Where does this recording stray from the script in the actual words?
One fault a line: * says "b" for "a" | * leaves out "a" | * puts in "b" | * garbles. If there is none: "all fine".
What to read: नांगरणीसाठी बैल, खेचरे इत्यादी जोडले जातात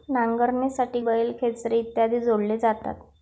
all fine